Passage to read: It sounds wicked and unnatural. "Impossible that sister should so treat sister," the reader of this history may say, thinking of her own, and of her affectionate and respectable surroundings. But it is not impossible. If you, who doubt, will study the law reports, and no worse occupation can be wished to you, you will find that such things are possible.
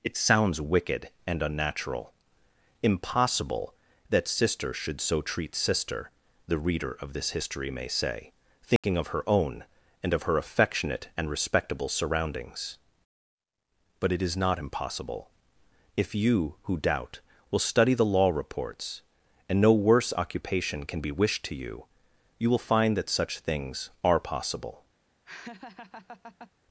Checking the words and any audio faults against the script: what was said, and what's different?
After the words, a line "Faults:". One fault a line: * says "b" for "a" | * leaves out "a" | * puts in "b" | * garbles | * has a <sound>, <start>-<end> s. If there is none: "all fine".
It sounds wicked and unnatural. "Impossible that sister should so treat sister," the reader of this history may say, thinking of her own, and of her affectionate and respectable surroundings. But it is not impossible. If you, who doubt, will study the law reports, and no worse occupation can be wished to you, you will find that such things are possible.
Faults:
* has a dropout, 8.8-8.8 s
* has a laugh, 25.2-26.5 s